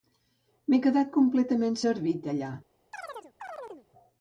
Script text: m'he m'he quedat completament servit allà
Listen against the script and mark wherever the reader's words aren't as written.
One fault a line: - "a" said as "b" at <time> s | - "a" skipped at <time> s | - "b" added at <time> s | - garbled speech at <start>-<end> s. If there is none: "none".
- "m'he" skipped at 0.8 s